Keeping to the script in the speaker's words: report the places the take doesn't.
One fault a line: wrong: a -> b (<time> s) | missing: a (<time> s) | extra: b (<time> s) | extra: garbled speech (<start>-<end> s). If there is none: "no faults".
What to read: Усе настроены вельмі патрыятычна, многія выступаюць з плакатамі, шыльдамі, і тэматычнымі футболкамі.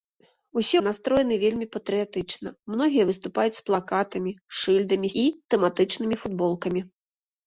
no faults